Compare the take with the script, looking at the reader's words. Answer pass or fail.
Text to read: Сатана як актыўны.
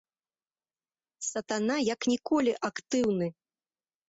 fail